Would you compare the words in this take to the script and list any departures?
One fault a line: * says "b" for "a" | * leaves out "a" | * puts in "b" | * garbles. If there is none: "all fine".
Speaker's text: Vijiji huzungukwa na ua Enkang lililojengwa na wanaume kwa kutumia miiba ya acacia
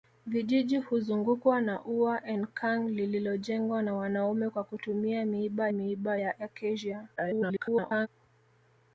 * puts in "miiba"
* garbles